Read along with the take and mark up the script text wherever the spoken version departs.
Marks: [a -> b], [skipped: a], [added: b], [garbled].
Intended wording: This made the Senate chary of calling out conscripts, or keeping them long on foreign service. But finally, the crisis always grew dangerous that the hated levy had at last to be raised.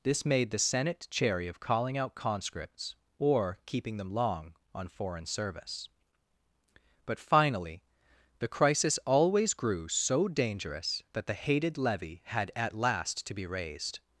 This made the Senate chary of calling out conscripts, or keeping them long on foreign service. But finally, the crisis always grew [added: so] dangerous that the hated levy had at last to be raised.